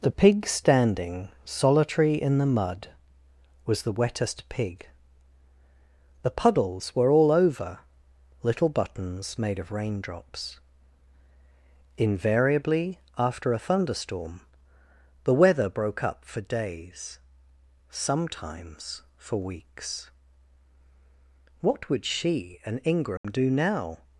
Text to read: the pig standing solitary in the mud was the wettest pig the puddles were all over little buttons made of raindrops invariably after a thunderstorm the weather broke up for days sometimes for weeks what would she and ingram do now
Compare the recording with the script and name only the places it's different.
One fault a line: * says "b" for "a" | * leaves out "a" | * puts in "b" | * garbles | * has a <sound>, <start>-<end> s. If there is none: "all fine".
* has a dropout, 23.2-23.2 s